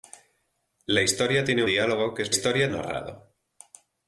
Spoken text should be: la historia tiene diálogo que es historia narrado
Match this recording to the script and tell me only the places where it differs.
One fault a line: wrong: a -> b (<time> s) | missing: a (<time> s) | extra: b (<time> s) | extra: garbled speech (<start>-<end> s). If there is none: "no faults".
no faults